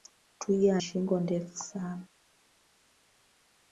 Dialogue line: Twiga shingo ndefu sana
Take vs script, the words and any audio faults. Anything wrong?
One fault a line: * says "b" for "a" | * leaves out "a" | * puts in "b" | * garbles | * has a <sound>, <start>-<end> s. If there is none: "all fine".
all fine